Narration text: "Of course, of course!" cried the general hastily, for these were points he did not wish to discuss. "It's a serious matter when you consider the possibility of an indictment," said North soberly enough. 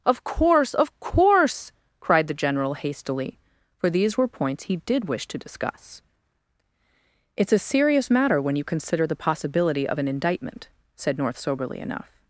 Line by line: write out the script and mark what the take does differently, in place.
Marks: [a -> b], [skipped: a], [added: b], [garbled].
"Of course, of course!" cried the general hastily, for these were points he did [skipped: not] wish to discuss. "It's a serious matter when you consider the possibility of an indictment," said North soberly enough.